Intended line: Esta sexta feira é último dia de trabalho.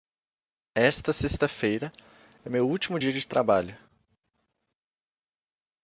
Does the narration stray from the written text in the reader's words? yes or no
yes